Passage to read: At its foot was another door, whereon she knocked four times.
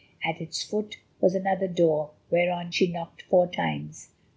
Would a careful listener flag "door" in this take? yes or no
no